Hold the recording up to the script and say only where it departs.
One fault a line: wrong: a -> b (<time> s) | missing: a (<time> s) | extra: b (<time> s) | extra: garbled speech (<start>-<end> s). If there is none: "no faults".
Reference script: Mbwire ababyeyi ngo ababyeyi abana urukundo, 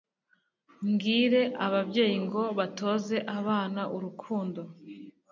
wrong: ababyeyi -> batoze (2.6 s)